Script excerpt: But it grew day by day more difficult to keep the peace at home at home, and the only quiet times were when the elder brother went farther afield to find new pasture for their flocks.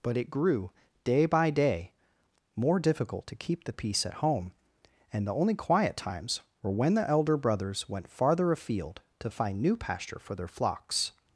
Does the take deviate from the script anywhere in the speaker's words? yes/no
yes